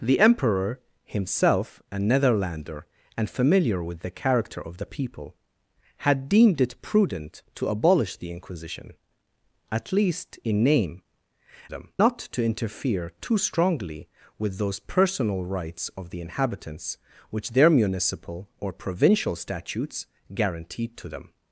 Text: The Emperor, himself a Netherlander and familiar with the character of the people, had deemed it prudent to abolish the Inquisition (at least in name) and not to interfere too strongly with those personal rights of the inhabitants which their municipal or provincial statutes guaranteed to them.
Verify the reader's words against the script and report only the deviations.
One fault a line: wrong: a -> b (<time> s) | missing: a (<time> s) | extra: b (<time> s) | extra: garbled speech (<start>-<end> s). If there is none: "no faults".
wrong: and -> them (11.7 s)